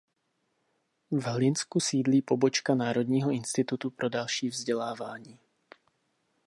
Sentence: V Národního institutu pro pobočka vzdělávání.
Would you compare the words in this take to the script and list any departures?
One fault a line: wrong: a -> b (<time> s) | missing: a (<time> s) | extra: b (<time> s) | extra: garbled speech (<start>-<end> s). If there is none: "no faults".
extra: Hlinsku sídlí pobočka (1.2 s)
wrong: pobočka -> další (4.1 s)